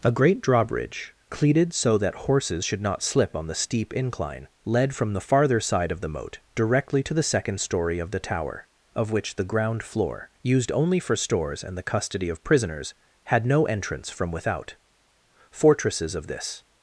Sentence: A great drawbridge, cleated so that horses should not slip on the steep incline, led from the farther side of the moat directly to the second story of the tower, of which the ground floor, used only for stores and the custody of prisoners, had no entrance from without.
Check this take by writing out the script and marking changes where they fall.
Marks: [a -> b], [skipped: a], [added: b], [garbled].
A great drawbridge, cleated so that horses should not slip on the steep incline, led from the farther side of the moat directly to the second story of the tower, of which the ground floor, used only for stores and the custody of prisoners, had no entrance from without. [added: Fortresses of this]